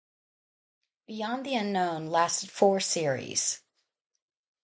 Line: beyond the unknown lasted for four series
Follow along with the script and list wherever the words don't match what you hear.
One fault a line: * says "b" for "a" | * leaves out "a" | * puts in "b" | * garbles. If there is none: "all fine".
* leaves out "for"